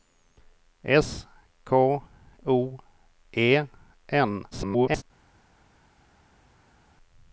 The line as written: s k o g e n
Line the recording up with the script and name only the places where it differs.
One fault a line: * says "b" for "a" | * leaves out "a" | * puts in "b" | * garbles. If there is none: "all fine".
* leaves out "g"
* garbles